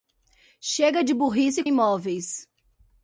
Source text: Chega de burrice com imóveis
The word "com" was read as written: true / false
false